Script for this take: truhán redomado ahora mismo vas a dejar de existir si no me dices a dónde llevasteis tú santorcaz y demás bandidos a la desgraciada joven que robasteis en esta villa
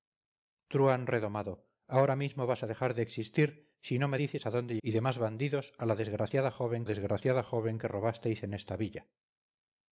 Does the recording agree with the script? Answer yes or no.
no